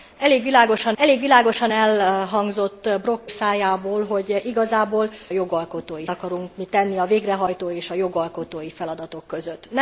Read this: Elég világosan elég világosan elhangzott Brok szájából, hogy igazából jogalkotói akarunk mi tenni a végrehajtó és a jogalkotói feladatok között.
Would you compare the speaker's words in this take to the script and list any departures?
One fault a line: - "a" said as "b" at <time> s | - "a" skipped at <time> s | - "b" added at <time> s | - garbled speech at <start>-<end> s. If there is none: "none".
none